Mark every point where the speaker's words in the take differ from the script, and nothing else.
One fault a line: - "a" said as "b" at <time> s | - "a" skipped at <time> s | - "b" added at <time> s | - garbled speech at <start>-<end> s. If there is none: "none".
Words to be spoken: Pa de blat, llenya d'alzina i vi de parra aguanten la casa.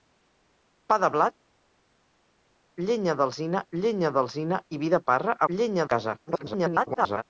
- "llenya d'alzina" added at 3.8 s
- "aguanten" said as "llenya" at 5.5 s
- garbled speech at 6.3-7.2 s